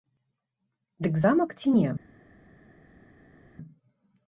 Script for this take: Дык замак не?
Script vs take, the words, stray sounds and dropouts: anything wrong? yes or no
yes